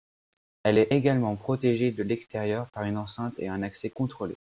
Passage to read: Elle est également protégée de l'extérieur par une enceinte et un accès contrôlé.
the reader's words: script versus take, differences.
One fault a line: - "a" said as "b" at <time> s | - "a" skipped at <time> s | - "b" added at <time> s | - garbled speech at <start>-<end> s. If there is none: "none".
none